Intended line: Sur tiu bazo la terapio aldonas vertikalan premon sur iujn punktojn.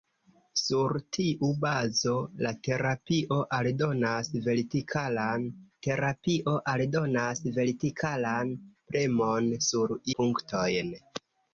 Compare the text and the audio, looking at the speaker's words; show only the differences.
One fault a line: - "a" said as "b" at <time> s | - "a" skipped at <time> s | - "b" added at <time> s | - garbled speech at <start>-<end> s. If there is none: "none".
- "terapio aldonas vertikalan" added at 5.9 s
- "iujn" skipped at 10.0 s